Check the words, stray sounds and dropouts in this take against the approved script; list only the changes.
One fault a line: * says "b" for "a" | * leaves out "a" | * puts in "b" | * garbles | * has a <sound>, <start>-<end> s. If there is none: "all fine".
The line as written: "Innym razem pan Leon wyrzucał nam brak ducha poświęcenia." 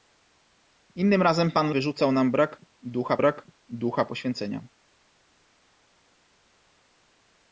* leaves out "Leon"
* puts in "brak ducha"